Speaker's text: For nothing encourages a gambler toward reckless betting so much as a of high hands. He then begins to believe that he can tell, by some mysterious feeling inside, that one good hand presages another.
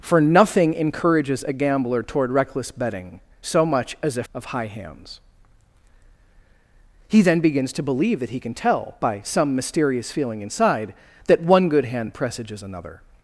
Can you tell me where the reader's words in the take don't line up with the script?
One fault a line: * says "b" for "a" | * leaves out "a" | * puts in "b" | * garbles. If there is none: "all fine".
all fine